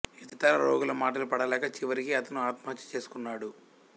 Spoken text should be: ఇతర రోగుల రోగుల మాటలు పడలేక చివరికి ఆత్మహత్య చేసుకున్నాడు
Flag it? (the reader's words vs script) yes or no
yes